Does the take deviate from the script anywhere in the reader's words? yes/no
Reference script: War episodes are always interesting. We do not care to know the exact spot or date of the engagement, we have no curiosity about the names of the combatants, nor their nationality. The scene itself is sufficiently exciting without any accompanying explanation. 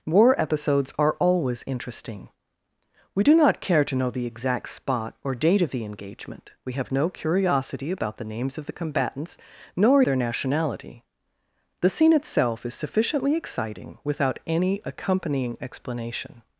no